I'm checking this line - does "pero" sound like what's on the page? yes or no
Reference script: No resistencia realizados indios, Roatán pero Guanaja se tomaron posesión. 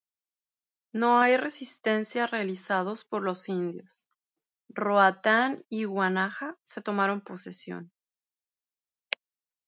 no